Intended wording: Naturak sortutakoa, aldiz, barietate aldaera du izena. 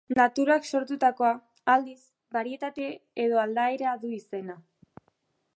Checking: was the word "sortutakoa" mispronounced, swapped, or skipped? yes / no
no